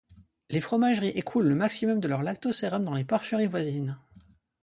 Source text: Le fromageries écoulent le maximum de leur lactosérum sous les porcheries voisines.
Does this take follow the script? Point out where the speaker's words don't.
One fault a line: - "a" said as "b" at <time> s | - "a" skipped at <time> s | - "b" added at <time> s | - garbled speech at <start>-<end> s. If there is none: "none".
- "Le" said as "Les" at 0.5 s
- "sous" said as "dans" at 2.8 s